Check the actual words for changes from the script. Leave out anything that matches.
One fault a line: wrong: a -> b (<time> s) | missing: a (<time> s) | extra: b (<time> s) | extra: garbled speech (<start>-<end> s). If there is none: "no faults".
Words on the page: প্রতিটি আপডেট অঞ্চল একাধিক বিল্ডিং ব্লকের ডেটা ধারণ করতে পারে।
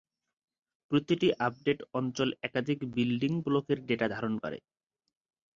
missing: করতে (4.3 s)